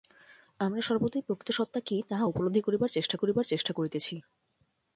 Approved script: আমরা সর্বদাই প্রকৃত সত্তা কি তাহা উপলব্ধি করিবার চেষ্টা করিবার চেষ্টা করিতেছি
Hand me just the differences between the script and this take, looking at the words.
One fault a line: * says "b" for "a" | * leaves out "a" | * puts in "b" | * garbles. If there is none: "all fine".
all fine